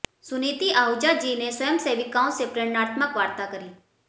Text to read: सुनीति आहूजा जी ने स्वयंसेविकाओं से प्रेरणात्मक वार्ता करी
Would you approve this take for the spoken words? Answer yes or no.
yes